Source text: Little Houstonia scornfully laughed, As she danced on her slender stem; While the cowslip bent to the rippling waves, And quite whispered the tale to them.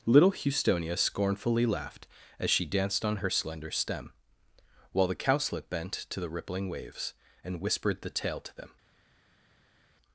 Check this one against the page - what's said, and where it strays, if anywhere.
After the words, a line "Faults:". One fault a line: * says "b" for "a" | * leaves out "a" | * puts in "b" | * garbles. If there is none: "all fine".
Little Houstonia scornfully laughed, As she danced on her slender stem; While the cowslip bent to the rippling waves, And whispered the tale to them.
Faults:
* leaves out "quite"